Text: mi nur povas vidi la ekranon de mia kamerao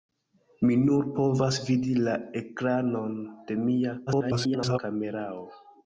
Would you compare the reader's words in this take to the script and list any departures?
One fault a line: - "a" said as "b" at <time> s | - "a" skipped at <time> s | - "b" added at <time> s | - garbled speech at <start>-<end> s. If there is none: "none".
- garbled speech at 4.1-4.8 s